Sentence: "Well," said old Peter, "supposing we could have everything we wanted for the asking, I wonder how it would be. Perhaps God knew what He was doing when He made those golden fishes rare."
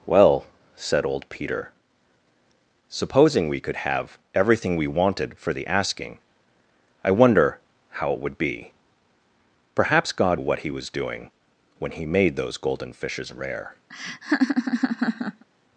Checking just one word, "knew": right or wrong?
wrong